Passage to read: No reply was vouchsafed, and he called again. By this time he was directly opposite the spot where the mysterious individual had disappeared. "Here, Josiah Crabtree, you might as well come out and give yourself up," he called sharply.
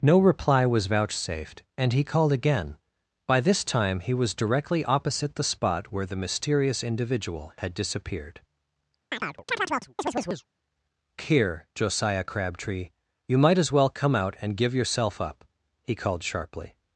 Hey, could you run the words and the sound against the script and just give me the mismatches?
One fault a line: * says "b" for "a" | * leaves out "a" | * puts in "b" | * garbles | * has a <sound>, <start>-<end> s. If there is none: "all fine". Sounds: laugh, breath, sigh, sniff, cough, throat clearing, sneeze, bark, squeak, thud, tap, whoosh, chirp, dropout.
* has a chirp, 9.1-10.5 s